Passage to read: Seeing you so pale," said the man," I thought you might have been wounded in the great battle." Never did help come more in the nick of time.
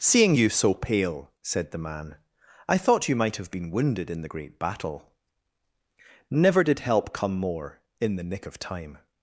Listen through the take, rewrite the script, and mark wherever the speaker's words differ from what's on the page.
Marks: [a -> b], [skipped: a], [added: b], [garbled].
Seeing you so pale," said the man," I thought you might have been wounded in the great battle." Never did help come more in the nick of time.